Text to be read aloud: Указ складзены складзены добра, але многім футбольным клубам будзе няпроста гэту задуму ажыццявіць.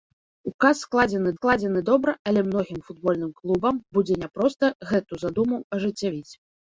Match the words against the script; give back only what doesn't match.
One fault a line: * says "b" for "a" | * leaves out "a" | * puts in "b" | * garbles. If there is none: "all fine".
all fine